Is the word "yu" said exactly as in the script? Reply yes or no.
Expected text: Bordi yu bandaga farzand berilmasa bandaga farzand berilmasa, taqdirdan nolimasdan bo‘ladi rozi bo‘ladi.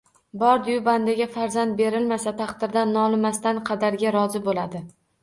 yes